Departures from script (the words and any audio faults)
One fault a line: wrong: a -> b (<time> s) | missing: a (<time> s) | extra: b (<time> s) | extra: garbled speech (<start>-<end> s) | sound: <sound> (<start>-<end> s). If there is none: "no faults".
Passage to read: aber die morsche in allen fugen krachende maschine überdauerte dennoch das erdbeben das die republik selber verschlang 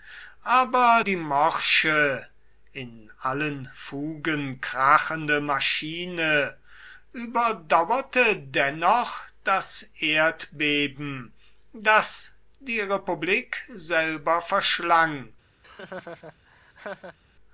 sound: laugh (15.6-17.2 s)